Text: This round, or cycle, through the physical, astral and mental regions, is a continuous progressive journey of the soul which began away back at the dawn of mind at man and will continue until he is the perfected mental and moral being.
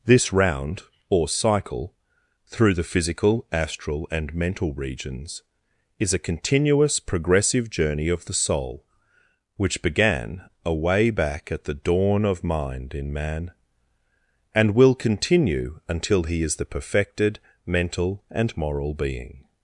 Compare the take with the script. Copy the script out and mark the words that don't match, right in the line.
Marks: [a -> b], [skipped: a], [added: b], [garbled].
This round, or cycle, through the physical, astral and mental regions, is a continuous progressive journey of the soul which began away back at the dawn of mind [at -> in] man and will continue until he is the perfected mental and moral being.